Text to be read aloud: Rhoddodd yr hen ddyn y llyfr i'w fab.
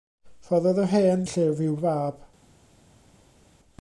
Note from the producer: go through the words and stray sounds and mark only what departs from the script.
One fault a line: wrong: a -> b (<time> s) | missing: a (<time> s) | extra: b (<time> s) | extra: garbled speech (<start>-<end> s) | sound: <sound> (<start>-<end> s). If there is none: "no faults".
missing: ddyn (1.3 s)